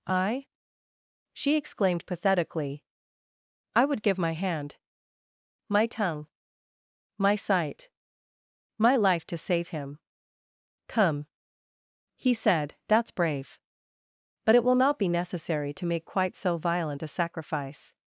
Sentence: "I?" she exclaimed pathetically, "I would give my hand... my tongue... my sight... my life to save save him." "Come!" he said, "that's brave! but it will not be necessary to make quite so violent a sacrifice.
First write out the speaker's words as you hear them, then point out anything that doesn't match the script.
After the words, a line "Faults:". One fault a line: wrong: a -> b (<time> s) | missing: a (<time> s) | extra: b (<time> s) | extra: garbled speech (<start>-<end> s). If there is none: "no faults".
"I?" she exclaimed pathetically, "I would give my hand... my tongue... my sight... my life to save him." "Come!" he said, "that's brave! but it will not be necessary to make quite so violent a sacrifice.
Faults:
missing: save (9.7 s)